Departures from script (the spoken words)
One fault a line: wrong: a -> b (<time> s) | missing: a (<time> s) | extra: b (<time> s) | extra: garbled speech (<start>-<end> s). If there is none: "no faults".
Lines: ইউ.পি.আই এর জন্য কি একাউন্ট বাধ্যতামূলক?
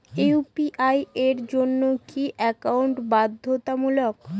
no faults